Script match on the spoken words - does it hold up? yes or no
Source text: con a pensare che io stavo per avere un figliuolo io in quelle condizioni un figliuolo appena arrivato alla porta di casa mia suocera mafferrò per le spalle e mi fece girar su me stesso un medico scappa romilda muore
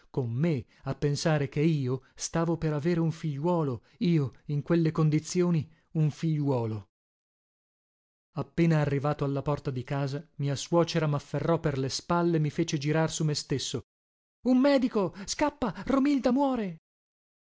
no